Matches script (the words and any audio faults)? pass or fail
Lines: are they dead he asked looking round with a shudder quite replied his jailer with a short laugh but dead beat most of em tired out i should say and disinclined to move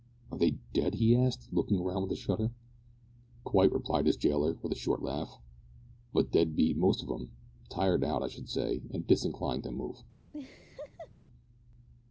fail